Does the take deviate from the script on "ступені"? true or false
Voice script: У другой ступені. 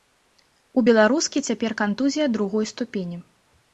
false